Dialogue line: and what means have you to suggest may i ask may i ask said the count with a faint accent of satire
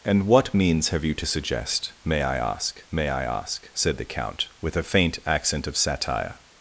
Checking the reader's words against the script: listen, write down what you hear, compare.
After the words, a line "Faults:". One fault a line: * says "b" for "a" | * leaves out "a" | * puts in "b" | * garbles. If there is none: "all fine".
and what means have you to suggest may i ask may i ask said the count with a faint accent of satire
Faults:
all fine